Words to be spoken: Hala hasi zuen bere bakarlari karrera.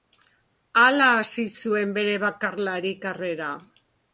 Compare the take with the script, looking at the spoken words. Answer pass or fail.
pass